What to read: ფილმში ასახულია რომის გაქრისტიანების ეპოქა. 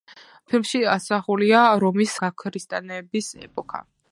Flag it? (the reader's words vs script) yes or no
no